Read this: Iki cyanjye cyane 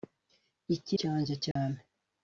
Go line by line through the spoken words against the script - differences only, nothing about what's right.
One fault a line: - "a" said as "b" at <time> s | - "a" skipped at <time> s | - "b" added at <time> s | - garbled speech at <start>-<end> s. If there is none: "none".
none